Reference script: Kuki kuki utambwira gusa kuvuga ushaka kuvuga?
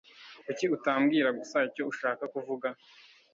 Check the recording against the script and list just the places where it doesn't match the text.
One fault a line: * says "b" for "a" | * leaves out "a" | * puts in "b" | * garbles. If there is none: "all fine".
* leaves out "kuki"
* says "icyo" for "kuvuga"